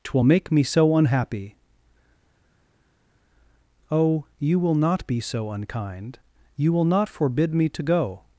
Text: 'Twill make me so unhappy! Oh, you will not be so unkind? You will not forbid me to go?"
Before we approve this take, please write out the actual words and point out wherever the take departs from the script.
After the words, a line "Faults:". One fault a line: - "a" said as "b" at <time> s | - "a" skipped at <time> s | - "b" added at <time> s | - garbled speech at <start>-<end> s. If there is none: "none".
'Twill make me so unhappy! Oh, you will not be so unkind? You will not forbid me to go?"
Faults:
none